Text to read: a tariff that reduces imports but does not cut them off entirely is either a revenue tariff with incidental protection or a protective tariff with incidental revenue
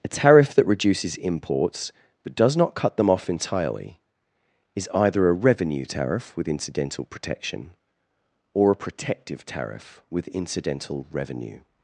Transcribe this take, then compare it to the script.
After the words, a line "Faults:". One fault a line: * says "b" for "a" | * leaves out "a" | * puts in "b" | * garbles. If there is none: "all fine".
a tariff that reduces imports but does not cut them off entirely is either a revenue tariff with incidental protection or a protective tariff with incidental revenue
Faults:
all fine